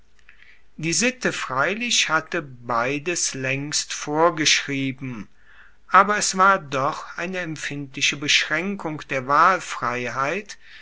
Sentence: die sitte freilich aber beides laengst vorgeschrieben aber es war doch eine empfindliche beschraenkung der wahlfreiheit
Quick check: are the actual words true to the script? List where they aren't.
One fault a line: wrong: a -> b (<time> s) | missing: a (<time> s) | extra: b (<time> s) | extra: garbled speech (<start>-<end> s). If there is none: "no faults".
wrong: aber -> hatte (2.1 s)